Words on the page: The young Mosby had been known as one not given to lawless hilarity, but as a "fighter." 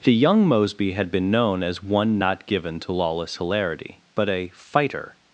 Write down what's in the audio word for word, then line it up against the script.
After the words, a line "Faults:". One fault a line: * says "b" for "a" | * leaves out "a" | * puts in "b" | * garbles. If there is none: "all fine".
The young Mosby had been known as one not given to lawless hilarity, but a "fighter."
Faults:
* leaves out "as"